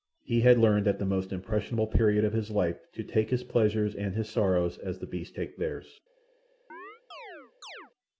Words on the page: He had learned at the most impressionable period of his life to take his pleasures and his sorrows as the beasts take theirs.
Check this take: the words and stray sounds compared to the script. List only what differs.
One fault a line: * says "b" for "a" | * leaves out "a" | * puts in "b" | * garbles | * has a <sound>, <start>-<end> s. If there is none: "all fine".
* has a chirp, 6.7-7.9 s